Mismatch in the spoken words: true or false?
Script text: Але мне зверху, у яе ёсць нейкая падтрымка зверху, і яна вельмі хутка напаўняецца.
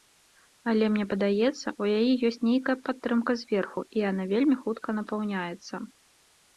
true